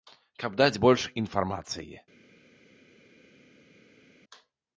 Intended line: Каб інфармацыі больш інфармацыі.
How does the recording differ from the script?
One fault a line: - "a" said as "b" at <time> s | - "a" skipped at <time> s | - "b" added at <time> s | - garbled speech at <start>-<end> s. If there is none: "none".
- "інфармацыі" said as "даць" at 0.6 s